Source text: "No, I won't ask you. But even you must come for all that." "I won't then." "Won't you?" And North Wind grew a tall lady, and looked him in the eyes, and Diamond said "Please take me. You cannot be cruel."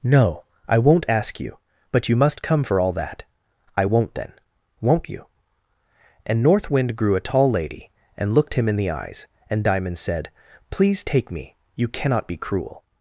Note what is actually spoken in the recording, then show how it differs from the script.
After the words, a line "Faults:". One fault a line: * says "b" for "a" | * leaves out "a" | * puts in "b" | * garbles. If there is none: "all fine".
"No, I won't ask you. But you must come for all that." "I won't then." "Won't you?" And North Wind grew a tall lady, and looked him in the eyes, and Diamond said "Please take me. You cannot be cruel."
Faults:
* leaves out "even"